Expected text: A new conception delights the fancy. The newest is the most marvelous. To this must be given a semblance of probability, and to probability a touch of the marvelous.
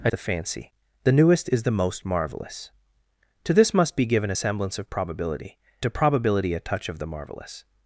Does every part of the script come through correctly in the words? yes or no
no